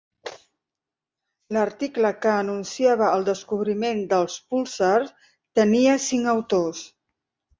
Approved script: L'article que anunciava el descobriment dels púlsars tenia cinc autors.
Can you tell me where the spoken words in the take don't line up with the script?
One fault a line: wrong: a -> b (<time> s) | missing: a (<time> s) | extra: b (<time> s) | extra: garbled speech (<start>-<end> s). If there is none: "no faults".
no faults